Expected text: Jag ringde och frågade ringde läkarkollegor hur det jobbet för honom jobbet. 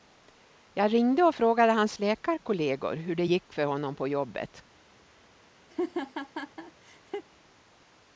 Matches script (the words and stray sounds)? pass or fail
fail